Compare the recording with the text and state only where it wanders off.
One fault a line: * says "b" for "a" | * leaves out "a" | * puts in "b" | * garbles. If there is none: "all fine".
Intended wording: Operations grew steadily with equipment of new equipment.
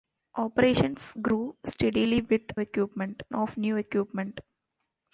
all fine